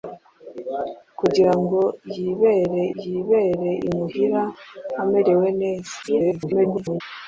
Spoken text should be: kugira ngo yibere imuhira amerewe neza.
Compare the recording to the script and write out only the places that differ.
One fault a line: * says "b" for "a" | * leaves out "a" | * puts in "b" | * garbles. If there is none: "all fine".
* puts in "yibere"
* garbles